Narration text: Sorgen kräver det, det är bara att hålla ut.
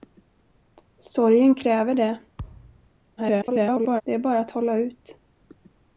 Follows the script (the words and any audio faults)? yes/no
no